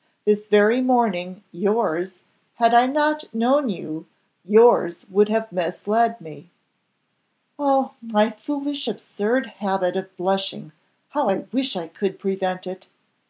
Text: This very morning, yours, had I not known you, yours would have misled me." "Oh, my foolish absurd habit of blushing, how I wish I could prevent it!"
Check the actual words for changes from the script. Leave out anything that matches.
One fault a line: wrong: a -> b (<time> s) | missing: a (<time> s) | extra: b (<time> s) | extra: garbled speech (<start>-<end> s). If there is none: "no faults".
no faults